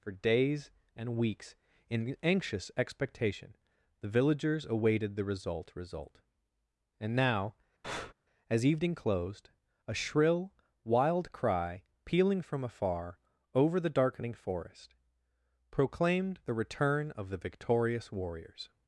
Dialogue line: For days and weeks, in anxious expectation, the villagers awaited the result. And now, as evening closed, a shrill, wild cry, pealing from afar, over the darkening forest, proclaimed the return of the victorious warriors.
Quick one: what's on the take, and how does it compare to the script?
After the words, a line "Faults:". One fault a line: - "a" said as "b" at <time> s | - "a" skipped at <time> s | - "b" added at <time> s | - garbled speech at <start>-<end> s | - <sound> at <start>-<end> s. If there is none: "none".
For days and weeks, in anxious expectation, the villagers awaited the result result. And now, as evening closed, a shrill, wild cry, pealing from afar, over the darkening forest, proclaimed the return of the victorious warriors.
Faults:
- "result" added at 5.8 s
- breath at 7.8-8.1 s